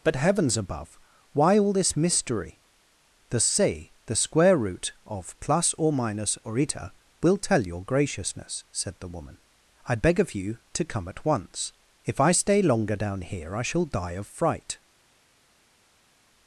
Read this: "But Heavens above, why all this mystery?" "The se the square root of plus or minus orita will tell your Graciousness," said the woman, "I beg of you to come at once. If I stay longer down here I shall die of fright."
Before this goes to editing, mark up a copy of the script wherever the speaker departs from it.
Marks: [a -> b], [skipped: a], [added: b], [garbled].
"But Heavens above, why all this mystery?" "The se the square root of plus or minus orita will tell your Graciousness," said the woman, "I beg of you to come at once. If I stay longer down here I shall die of fright."